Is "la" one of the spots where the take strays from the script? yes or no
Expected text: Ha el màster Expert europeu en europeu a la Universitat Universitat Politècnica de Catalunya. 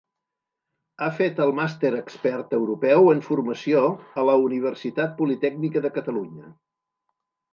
no